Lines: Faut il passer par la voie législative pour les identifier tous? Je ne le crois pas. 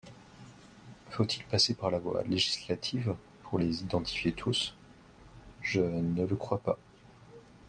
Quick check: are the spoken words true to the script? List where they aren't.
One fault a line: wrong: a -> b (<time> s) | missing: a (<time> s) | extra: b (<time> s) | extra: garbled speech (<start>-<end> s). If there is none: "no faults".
no faults